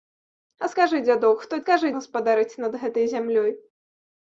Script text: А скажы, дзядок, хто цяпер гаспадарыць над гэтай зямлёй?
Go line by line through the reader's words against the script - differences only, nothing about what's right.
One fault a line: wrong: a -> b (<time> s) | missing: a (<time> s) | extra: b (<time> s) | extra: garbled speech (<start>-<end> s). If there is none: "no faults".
wrong: цяпер -> скажы (1.6 s)